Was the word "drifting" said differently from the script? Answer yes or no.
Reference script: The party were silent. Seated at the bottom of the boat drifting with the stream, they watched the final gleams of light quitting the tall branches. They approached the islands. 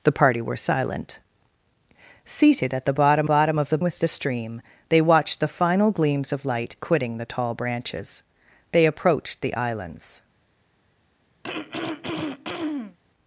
yes